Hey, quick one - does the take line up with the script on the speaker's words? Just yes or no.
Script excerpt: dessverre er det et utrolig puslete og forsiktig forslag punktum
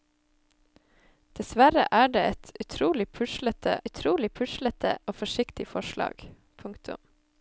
no